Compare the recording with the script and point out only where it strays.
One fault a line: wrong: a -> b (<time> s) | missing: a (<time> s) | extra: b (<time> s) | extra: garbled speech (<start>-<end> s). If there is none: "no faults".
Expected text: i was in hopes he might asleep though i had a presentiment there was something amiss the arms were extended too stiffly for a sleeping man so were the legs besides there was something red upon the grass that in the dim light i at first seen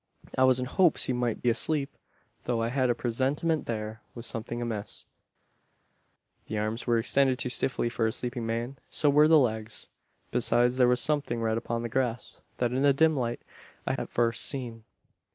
no faults